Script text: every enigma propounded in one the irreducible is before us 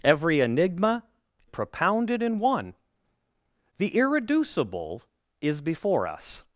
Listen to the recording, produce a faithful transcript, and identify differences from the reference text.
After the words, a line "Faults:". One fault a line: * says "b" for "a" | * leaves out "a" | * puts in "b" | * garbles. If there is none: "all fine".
every enigma propounded in one the irreducible is before us
Faults:
all fine